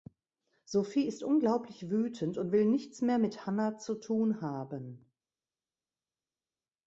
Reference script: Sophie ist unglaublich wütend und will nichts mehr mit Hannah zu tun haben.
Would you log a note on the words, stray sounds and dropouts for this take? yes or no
no